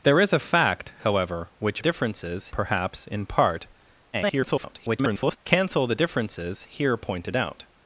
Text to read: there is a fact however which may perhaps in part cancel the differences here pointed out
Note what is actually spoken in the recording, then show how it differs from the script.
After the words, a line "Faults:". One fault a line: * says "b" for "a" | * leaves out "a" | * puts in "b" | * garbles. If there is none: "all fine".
there is a fact however which differences perhaps in part [garbled] cancel the differences here pointed out
Faults:
* says "differences" for "may"
* garbles